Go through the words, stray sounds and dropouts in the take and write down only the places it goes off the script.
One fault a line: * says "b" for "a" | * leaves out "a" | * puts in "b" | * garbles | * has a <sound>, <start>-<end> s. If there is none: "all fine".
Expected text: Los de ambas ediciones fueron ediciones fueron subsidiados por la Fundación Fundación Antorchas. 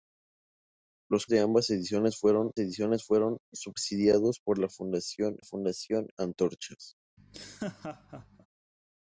* has a laugh, 7.2-8.5 s